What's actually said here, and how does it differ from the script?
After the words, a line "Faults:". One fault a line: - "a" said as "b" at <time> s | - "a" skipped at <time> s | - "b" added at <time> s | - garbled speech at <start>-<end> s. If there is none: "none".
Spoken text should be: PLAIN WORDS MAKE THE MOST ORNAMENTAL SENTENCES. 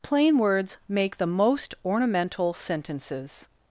PLAIN WORDS MAKE THE MOST ORNAMENTAL SENTENCES.
Faults:
none